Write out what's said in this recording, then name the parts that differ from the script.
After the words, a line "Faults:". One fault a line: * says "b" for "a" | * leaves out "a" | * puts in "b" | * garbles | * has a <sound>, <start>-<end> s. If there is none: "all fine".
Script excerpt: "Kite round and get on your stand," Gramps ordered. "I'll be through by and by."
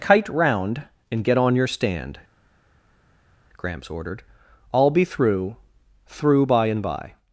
"Kite round and get on your stand," Gramps ordered. "I'll be through through by and by."
Faults:
* puts in "through"